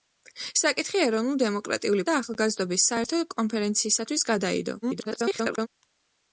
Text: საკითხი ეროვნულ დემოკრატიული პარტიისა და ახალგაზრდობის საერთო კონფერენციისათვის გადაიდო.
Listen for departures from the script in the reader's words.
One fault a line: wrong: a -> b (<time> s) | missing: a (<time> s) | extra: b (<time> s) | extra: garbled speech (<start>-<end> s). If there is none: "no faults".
missing: პარტიისა (2.0 s)
extra: garbled speech (4.8-5.7 s)